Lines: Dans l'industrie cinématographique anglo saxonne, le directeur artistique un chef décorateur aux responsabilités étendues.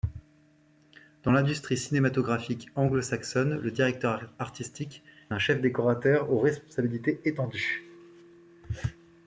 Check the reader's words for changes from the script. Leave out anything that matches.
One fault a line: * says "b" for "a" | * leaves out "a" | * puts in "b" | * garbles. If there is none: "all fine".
all fine